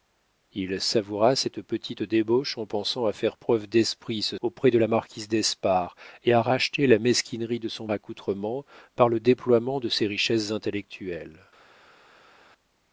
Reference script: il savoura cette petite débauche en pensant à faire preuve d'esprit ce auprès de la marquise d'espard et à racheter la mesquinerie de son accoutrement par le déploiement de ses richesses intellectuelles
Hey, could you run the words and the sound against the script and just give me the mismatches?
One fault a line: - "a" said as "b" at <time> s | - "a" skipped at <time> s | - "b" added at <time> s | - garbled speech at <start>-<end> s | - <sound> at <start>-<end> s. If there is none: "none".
none